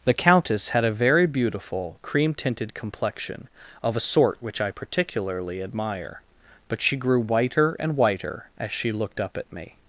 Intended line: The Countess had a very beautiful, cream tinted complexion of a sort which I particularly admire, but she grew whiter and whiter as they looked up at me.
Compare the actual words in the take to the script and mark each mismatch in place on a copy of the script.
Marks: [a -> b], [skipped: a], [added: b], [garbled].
The Countess had a very beautiful, cream tinted complexion of a sort which I particularly admire, but she grew whiter and whiter as [they -> she] looked up at me.